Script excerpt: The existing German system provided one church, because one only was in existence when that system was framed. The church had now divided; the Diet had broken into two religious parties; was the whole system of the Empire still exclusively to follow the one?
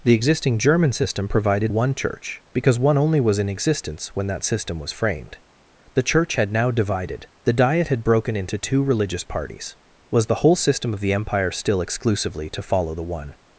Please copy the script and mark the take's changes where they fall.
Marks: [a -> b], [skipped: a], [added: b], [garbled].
The existing German system provided one church, because one only was in existence when that system was framed. The church had now divided; the Diet had broken into two religious parties; was the whole system of the Empire still exclusively to follow the one?